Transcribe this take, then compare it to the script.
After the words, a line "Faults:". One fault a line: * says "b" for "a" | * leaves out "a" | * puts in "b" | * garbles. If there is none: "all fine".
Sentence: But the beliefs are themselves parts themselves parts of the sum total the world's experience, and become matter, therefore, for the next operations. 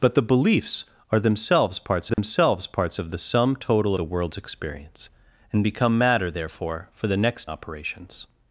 But the beliefs are themselves parts themselves parts of the sum total the world's experience, and become matter, therefore, for the next operations.
Faults:
all fine